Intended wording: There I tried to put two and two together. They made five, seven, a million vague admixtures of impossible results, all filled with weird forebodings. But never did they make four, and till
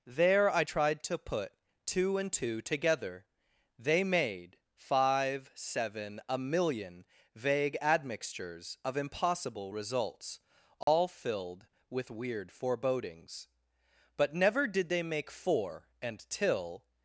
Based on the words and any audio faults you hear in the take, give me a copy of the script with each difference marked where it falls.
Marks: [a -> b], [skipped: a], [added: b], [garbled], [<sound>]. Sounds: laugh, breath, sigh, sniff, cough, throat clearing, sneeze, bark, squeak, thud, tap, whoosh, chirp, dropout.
There I tried to put two and two together. They made five, seven, a million vague admixtures of impossible results, all [dropout] filled with weird forebodings. But never did they make four, and till